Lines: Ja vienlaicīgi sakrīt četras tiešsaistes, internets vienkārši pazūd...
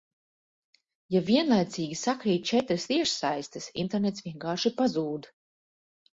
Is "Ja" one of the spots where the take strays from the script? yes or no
no